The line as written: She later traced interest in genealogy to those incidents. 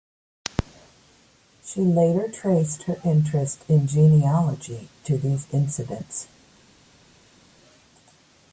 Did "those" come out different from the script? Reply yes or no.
yes